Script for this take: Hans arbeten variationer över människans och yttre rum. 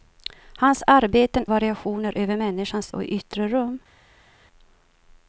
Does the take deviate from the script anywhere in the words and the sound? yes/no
no